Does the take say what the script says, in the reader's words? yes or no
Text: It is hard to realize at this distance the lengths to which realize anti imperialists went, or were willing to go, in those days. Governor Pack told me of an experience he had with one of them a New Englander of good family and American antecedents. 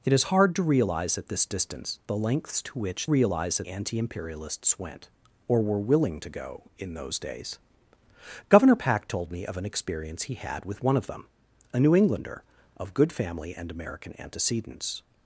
yes